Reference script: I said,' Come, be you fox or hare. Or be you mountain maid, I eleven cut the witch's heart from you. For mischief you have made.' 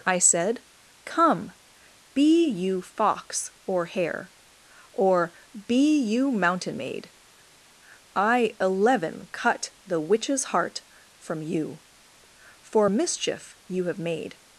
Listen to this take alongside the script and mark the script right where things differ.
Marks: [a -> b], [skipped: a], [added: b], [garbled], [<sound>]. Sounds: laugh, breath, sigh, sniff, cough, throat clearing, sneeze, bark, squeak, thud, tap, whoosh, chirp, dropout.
I said,' Come, be you fox or hare. Or be you mountain maid, I eleven cut the witch's heart from you. For mischief you have made.'